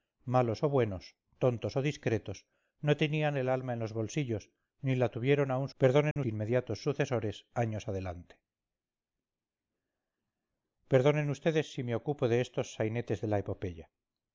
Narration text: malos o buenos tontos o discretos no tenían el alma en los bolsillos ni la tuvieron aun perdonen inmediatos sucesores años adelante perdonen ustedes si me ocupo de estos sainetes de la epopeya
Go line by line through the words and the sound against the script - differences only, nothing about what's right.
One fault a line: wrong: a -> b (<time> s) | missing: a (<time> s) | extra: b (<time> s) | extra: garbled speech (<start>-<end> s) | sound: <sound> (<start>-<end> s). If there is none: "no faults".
sound: dropout (6.1-6.2 s)